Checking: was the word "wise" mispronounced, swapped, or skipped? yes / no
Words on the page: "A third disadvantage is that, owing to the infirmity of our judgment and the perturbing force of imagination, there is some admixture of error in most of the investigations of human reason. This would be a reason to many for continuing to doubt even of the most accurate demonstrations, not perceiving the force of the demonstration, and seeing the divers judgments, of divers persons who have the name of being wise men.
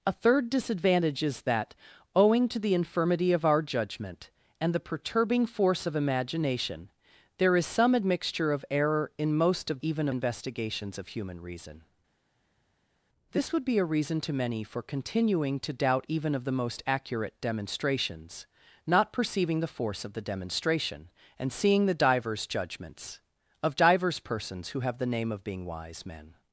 no